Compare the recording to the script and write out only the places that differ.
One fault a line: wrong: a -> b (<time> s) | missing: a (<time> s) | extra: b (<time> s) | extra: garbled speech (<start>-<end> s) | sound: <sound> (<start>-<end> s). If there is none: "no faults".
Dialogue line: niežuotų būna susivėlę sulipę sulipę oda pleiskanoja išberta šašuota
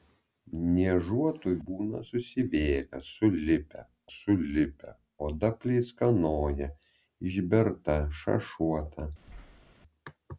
sound: thud (9.2-9.7 s)